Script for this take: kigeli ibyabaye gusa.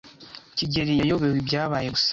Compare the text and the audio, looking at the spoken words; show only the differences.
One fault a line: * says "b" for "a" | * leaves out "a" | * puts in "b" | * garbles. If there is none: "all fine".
* puts in "yayobewe"